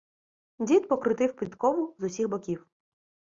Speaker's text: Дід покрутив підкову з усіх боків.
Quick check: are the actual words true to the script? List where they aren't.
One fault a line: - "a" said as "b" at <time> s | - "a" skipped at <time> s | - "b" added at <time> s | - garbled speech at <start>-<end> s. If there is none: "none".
none